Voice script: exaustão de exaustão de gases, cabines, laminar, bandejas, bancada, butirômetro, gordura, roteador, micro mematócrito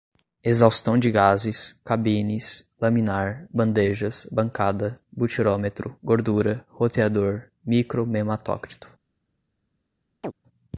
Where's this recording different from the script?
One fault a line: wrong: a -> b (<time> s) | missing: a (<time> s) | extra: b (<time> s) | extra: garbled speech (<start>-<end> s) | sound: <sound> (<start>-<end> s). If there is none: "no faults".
missing: exaustão de (1.1 s)
sound: chirp (10.2-10.3 s)